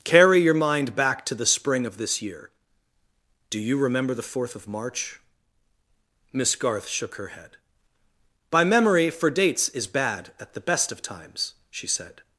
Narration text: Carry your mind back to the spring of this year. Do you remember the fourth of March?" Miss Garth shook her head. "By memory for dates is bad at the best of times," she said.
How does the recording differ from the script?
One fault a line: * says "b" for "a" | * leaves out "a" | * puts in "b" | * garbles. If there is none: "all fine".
all fine